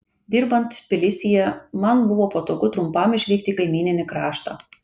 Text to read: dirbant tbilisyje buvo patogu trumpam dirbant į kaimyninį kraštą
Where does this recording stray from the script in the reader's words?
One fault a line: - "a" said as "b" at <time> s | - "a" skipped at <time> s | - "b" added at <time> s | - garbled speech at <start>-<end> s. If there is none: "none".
- "man" added at 1.9 s
- "dirbant" said as "išvykti" at 3.2 s